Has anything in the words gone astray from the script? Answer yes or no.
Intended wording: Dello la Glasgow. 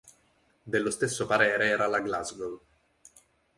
yes